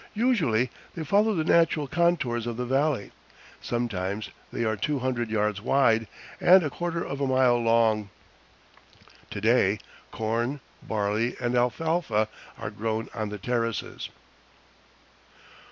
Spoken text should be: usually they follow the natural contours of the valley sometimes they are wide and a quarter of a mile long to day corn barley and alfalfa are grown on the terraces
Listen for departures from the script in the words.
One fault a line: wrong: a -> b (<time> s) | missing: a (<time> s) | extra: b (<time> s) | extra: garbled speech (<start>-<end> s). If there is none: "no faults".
extra: two hundred yards (4.8 s)